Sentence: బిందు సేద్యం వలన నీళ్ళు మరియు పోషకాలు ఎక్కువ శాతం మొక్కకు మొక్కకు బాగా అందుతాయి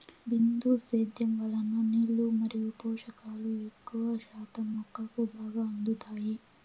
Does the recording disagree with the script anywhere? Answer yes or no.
yes